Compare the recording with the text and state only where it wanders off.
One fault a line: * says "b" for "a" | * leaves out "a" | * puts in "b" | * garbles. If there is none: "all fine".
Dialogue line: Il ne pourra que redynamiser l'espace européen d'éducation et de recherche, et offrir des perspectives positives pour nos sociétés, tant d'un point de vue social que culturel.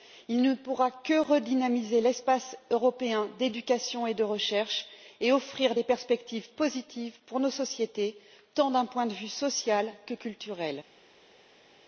all fine